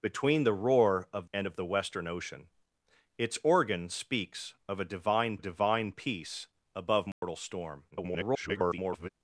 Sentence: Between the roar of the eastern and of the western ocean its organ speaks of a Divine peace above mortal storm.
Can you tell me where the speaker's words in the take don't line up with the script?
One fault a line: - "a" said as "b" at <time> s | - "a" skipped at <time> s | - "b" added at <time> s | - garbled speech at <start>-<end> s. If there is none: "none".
- "the eastern" skipped at 1.3 s
- "Divine" added at 5.4 s
- garbled speech at 7.9-9.1 s